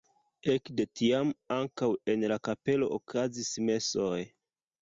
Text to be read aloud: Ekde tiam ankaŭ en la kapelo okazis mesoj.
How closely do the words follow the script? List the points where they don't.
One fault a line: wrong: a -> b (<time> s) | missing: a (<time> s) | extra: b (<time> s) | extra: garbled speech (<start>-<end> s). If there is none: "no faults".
no faults